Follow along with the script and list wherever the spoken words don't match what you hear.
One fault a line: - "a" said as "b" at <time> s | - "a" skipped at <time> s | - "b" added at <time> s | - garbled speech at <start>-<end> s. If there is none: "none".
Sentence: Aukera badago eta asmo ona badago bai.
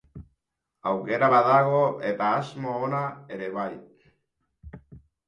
- "badago" said as "ere" at 3.4 s